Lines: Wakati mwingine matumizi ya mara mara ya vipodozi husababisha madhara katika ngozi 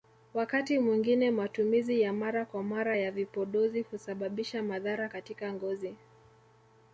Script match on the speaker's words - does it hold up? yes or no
no